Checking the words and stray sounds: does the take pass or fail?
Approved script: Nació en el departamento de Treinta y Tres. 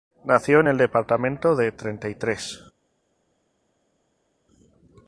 pass